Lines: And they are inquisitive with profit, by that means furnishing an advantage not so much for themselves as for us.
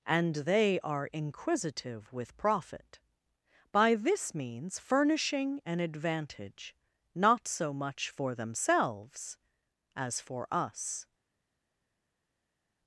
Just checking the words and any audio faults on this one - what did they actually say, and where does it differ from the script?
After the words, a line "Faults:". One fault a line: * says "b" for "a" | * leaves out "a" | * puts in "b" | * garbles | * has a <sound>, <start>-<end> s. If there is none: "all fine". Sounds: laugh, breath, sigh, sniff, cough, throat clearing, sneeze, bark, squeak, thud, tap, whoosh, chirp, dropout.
And they are inquisitive with profit, by this means furnishing an advantage not so much for themselves as for us.
Faults:
* says "this" for "that"